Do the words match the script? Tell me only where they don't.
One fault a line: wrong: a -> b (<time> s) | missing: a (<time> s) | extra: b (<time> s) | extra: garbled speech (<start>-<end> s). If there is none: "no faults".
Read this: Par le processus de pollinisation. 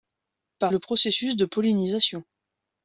no faults